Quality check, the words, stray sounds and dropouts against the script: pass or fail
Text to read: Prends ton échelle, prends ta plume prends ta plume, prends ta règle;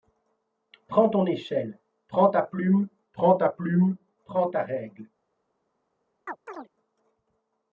fail